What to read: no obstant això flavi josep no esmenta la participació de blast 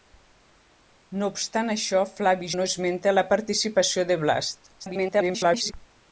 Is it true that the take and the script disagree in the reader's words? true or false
true